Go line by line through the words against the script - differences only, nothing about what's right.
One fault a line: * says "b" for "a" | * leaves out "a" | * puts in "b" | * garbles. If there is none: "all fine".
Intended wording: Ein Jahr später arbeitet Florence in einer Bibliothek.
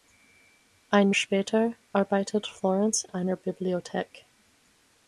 * leaves out "Jahr"
* leaves out "in"